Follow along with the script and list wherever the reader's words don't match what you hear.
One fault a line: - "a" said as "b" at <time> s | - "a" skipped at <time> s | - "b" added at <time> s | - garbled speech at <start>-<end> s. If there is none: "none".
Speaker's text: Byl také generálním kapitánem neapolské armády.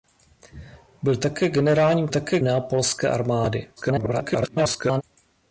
- "kapitánem" said as "také" at 2.1 s
- garbled speech at 3.8-5.0 s